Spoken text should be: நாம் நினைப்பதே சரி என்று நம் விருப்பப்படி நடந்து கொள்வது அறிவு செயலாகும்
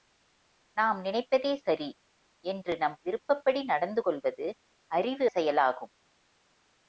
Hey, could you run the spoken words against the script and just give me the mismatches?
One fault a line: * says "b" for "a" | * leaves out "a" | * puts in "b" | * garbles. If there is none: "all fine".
all fine